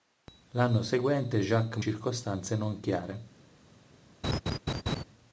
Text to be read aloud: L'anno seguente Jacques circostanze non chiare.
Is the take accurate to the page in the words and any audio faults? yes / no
no